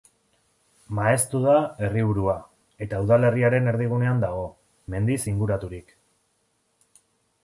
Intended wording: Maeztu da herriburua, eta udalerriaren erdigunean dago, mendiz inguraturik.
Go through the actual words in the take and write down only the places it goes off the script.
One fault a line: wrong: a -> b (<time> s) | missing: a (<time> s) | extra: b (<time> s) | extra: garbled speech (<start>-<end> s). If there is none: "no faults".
no faults